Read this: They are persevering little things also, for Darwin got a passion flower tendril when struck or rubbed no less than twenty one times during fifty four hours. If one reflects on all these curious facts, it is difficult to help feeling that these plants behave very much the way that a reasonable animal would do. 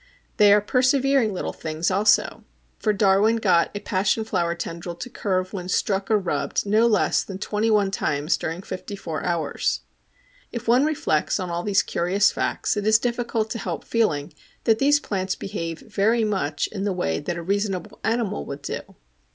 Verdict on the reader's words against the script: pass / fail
fail